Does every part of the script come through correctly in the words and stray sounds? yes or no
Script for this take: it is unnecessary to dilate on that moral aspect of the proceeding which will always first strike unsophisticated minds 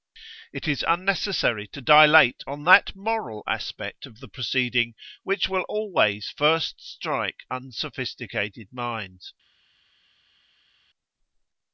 yes